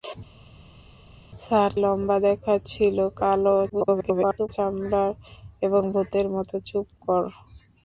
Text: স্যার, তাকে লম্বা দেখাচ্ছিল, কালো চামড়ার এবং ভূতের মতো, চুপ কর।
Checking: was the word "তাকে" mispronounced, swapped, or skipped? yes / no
yes